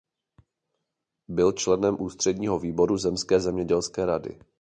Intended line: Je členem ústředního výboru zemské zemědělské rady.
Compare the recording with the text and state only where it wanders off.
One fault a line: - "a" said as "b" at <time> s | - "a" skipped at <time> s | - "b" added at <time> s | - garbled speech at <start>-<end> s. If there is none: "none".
- "Je" said as "Byl" at 1.3 s